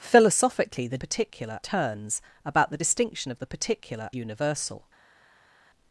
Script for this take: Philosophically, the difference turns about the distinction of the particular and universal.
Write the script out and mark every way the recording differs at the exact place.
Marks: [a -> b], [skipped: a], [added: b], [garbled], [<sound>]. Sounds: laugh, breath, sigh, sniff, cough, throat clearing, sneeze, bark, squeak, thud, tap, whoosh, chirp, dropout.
Philosophically, the [difference -> particular] turns about the distinction of the particular [skipped: and] universal.